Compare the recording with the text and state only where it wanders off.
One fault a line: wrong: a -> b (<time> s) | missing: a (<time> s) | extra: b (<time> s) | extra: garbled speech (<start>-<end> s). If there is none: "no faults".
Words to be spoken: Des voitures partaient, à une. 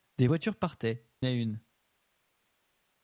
no faults